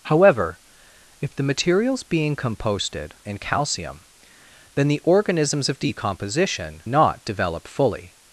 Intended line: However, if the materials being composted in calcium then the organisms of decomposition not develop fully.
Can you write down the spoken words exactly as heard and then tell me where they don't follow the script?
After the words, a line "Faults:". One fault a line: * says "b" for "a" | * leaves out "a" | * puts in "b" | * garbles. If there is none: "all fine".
However, if the materials being composted in calcium then the organisms of decomposition not develop fully.
Faults:
all fine